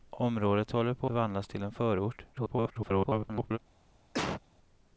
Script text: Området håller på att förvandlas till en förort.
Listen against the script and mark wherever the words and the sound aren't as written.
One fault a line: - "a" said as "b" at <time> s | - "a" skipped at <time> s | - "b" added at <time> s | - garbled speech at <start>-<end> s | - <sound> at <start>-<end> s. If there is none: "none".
- "att" skipped at 1.1 s
- garbled speech at 2.3-3.6 s
- cough at 4.1-4.4 s